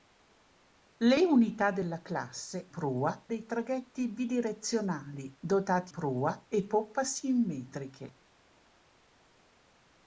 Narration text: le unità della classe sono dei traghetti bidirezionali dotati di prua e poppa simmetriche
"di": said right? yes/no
no